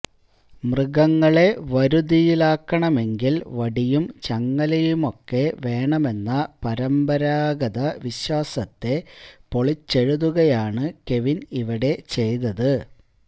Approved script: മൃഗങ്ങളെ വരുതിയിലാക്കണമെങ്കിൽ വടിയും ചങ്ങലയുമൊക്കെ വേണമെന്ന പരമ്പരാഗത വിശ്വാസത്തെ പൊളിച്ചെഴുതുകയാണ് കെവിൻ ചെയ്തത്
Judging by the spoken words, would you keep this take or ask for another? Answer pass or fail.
fail